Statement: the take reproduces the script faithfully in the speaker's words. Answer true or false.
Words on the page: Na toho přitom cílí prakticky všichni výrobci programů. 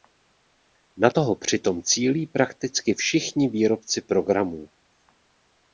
true